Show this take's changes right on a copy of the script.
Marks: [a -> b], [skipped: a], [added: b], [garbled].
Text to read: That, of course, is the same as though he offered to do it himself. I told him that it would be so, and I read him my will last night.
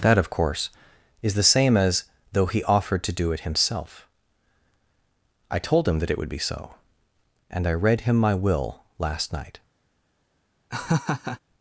That, of course, is the same as though he offered to do it himself. I told him that it would be so, and I read him my will last night.